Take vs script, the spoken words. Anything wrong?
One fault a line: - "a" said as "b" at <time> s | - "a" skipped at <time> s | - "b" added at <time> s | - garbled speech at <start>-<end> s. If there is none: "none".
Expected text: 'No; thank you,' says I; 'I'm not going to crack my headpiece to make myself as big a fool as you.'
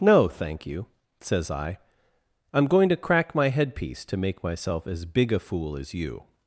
- "not" skipped at 2.7 s